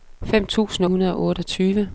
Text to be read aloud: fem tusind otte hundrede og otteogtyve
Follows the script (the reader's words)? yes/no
no